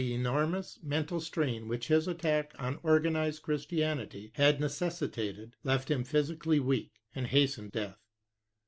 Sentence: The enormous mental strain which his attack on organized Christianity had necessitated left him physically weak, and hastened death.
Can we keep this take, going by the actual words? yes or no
yes